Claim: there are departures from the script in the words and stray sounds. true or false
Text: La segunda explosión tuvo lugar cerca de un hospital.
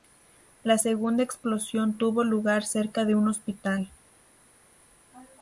false